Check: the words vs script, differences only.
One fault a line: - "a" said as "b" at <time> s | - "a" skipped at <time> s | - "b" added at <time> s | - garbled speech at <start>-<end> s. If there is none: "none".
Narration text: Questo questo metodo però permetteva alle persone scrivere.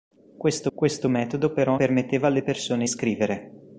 none